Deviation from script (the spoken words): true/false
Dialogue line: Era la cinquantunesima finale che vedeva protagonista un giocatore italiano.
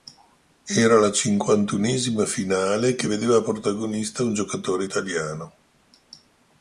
false